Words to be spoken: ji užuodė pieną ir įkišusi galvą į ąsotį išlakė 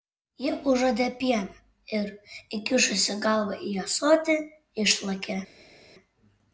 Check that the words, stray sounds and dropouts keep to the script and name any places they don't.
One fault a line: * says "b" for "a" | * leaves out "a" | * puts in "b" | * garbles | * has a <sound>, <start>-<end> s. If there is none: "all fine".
all fine